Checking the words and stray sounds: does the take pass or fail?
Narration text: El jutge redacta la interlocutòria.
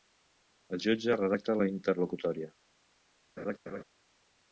fail